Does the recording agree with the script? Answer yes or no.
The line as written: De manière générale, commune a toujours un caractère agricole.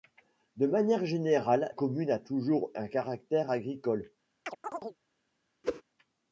yes